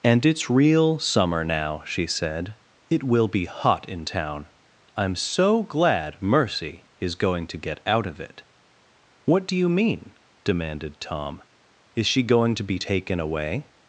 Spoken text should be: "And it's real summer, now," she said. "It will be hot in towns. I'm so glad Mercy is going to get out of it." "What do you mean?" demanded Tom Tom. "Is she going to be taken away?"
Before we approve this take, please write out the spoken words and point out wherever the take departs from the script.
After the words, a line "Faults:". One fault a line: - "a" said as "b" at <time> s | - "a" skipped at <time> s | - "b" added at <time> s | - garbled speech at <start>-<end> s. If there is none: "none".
"And it's real summer, now," she said. "It will be hot in town. I'm so glad Mercy is going to get out of it." "What do you mean?" demanded Tom. "Is she going to be taken away?"
Faults:
- "towns" said as "town" at 4.0 s
- "Tom" skipped at 11.4 s